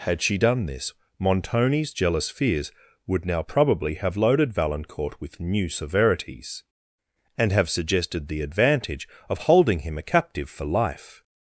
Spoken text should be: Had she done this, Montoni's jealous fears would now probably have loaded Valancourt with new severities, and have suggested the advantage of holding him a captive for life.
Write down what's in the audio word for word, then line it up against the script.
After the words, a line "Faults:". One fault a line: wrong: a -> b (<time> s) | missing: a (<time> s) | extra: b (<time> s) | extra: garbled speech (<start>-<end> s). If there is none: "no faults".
Had she done this, Montoni's jealous fears would now probably have loaded Valancourt with new severities, and have suggested the advantage of holding him a captive for life.
Faults:
no faults